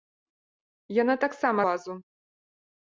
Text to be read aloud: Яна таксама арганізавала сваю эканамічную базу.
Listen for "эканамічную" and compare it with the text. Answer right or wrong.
wrong